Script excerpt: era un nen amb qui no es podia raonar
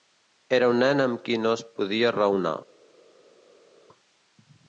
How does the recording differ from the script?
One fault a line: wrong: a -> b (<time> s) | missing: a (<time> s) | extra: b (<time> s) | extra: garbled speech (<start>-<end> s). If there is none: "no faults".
no faults